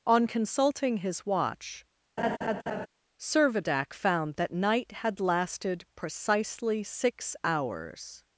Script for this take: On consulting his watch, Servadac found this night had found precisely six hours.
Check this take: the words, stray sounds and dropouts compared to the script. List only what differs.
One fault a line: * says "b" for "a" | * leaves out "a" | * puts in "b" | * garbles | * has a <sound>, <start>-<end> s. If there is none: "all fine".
* has a laugh, 2.2-2.9 s
* says "that" for "this"
* says "lasted" for "found"